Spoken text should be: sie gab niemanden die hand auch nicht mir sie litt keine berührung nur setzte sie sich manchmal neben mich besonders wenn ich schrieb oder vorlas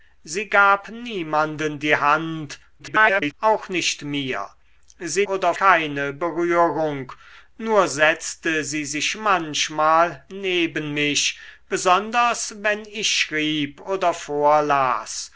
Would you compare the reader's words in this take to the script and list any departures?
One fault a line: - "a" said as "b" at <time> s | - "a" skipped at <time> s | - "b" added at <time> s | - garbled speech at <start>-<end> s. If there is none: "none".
- garbled speech at 2.8-3.3 s
- "litt" said as "oder" at 5.2 s